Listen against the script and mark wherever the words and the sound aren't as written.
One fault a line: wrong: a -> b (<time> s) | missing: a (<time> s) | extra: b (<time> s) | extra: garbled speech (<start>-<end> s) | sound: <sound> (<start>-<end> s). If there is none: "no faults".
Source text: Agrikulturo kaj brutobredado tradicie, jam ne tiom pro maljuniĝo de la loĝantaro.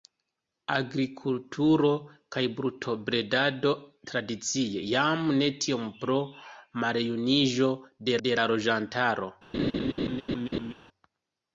extra: de (8.3 s)
sound: laugh (9.5-10.7 s)